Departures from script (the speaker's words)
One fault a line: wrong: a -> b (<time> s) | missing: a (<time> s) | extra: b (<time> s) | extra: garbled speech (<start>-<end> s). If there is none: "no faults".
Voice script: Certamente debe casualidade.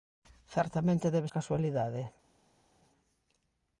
no faults